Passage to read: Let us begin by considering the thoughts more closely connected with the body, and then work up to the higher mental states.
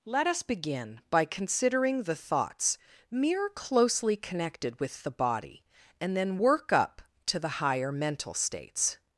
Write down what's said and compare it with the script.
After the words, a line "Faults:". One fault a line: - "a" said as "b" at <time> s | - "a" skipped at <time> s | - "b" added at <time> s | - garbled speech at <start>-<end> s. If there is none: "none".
Let us begin by considering the thoughts mere closely connected with the body, and then work up to the higher mental states.
Faults:
- "more" said as "mere" at 3.1 s